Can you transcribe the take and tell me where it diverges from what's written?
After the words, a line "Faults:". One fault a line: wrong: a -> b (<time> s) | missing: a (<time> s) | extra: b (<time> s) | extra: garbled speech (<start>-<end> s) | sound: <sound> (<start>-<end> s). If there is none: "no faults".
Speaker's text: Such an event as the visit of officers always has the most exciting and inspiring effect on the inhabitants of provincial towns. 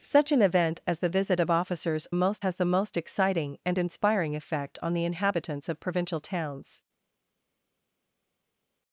Such an event as the visit of officers most has the most exciting and inspiring effect on the inhabitants of provincial towns.
Faults:
wrong: always -> most (2.1 s)